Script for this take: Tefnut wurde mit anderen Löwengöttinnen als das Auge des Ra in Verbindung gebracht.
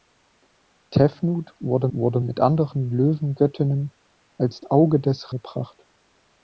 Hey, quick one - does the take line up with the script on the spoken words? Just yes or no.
no